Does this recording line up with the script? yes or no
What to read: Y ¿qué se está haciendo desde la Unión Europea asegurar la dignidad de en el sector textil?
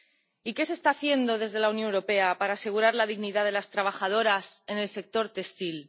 no